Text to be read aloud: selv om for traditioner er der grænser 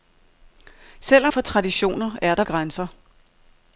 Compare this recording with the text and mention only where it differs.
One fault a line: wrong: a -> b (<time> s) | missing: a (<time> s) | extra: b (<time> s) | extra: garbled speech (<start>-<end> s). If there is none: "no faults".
no faults